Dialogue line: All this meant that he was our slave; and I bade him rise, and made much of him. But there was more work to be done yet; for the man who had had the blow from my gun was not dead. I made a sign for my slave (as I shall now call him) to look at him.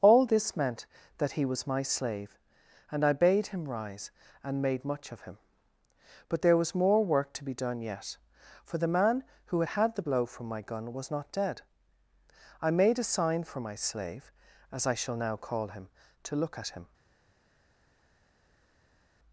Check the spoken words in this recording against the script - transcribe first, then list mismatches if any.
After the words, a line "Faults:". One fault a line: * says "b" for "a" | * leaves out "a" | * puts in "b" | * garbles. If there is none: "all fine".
All this meant that he was my slave; and I bade him rise, and made much of him. But there was more work to be done yet; for the man who had had the blow from my gun was not dead. I made a sign for my slave (as I shall now call him) to look at him.
Faults:
* says "my" for "our"